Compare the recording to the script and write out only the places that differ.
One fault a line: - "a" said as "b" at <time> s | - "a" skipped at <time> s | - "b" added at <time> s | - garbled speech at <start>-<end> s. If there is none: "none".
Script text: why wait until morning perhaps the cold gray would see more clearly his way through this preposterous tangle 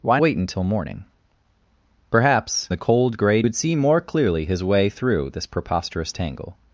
none